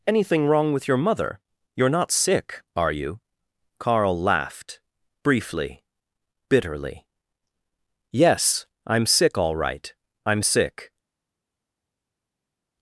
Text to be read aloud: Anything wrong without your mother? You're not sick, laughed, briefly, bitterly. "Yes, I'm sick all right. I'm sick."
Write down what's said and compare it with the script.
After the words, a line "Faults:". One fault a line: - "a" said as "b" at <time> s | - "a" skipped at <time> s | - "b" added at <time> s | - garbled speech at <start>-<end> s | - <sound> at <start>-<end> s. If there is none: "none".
Anything wrong with your mother? You're not sick, are you?" Carl laughed, briefly, bitterly. "Yes, I'm sick all right. I'm sick."
Faults:
- "without" said as "with" at 0.7 s
- "are you Carl" added at 2.8 s